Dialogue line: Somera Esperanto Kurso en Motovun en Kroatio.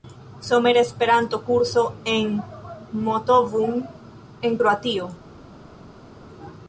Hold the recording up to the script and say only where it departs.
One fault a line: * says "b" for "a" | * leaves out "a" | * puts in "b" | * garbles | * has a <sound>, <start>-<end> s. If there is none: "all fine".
all fine